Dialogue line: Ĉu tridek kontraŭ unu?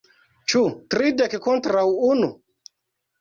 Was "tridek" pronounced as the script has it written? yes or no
yes